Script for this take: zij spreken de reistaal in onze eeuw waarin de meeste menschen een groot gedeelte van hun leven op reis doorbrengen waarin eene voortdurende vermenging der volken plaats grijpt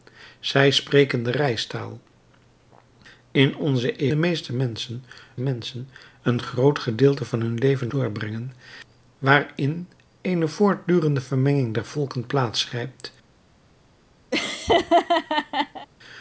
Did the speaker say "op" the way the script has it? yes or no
no